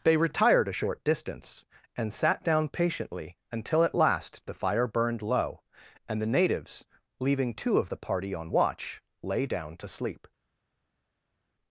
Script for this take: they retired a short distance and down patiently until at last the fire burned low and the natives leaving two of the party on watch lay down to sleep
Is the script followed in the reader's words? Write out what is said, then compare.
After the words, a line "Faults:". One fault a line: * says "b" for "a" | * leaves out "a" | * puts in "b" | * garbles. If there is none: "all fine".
they retired a short distance and sat down patiently until at last the fire burned low and the natives leaving two of the party on watch lay down to sleep
Faults:
* puts in "sat"